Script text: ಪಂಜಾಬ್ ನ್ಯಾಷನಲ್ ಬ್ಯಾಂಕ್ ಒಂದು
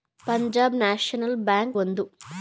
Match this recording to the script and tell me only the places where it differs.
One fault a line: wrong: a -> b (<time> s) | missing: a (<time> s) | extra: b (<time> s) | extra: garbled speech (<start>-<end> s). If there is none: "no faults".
no faults